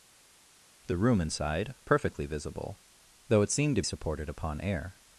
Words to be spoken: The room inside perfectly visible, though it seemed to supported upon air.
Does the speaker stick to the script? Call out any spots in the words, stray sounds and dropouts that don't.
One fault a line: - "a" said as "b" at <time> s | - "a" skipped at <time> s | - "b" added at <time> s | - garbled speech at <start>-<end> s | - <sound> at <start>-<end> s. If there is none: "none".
none